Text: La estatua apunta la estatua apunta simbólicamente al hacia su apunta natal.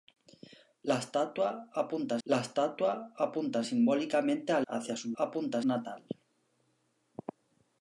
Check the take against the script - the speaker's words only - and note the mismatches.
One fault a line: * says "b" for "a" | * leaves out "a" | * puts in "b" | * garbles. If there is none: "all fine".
all fine